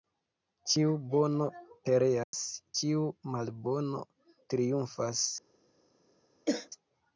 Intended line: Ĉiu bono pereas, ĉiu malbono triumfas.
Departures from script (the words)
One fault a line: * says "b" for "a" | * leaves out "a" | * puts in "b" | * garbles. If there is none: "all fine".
all fine